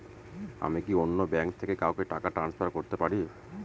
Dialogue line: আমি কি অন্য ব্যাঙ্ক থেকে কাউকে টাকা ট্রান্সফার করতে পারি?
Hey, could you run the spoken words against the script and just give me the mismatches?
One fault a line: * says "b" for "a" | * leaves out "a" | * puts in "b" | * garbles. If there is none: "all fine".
all fine